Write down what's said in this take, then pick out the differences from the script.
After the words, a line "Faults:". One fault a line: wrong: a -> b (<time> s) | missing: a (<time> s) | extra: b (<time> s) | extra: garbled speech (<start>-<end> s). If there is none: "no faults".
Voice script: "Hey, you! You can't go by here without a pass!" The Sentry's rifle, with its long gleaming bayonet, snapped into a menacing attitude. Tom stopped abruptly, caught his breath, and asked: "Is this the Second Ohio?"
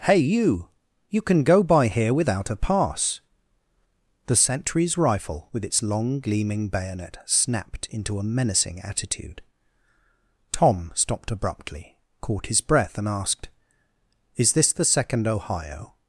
"Hey, you! You can go by here without a pass!" The Sentry's rifle, with its long gleaming bayonet, snapped into a menacing attitude. Tom stopped abruptly, caught his breath, and asked: "Is this the Second Ohio?"
Faults:
wrong: can't -> can (1.2 s)